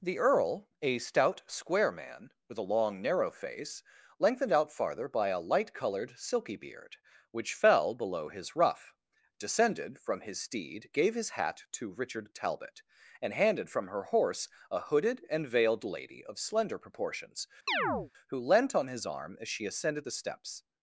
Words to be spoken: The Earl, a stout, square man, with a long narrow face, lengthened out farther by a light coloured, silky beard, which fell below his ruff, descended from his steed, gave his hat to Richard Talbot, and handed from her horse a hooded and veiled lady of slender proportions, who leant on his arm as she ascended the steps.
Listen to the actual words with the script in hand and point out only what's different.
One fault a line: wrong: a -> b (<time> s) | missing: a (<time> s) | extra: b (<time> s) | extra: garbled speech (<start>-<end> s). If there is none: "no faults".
no faults